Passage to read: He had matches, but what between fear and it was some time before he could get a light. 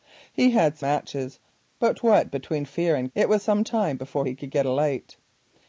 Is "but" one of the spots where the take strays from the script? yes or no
no